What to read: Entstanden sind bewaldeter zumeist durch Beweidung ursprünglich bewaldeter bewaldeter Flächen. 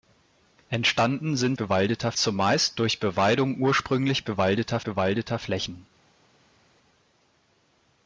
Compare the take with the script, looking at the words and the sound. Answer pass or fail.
pass